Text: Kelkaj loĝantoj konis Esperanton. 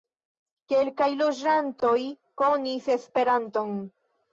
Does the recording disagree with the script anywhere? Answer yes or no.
no